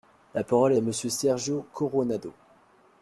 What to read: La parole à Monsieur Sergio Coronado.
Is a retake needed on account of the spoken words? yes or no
no